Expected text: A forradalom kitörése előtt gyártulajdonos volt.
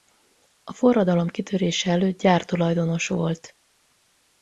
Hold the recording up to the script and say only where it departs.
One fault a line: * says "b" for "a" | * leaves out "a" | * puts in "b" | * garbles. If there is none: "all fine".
all fine